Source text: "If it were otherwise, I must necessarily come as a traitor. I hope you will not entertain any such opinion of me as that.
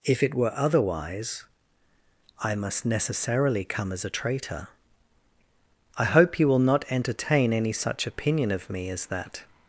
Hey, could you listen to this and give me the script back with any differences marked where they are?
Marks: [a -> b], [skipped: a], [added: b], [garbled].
"If it were otherwise, I must necessarily come as a traitor. I hope you will not entertain any such opinion of me as that.